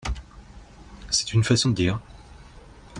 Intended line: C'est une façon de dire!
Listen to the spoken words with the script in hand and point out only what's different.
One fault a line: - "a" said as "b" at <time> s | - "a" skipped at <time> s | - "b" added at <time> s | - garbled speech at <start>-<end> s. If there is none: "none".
none